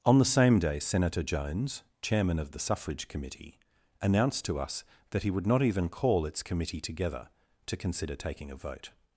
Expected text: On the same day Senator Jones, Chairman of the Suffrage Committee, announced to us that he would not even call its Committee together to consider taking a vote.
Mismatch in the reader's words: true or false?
false